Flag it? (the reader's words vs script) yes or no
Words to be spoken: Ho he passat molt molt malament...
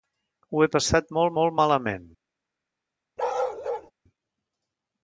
no